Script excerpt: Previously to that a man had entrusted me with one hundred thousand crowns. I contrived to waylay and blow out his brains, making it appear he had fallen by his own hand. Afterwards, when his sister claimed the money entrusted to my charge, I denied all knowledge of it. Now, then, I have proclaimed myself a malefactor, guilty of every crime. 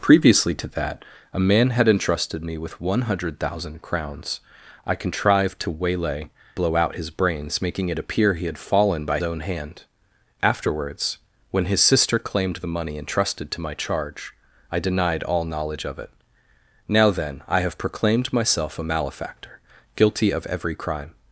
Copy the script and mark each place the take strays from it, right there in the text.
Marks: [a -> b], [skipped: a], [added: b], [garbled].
Previously to that a man had entrusted me with one hundred thousand crowns. I contrived to waylay [skipped: and] blow out his brains, making it appear he had fallen by [skipped: his] own hand. Afterwards, when his sister claimed the money entrusted to my charge, I denied all knowledge of it. Now, then, I have proclaimed myself a malefactor, guilty of every crime.